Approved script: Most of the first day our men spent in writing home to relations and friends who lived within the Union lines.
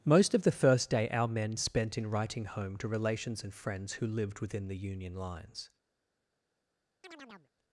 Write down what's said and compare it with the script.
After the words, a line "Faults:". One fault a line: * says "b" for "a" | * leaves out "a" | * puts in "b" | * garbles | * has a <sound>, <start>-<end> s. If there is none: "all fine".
Most of the first day our men spent in writing home to relations and friends who lived within the Union lines.
Faults:
* has a chirp, 7.0-7.5 s